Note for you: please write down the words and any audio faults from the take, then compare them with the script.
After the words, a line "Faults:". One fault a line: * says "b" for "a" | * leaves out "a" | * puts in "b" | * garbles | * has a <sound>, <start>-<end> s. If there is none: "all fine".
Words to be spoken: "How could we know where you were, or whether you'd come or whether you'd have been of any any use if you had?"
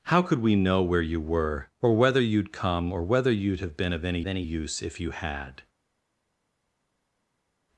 "How could we know where you were, or whether you'd come or whether you'd have been of any any use if you had?"
Faults:
all fine